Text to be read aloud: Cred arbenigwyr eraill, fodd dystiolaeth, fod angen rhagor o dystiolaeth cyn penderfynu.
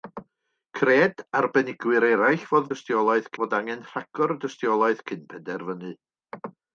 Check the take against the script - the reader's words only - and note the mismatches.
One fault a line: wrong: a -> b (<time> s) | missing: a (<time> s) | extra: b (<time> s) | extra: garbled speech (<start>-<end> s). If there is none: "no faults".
no faults